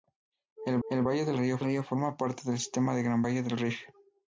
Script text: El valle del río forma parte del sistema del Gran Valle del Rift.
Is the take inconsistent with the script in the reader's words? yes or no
yes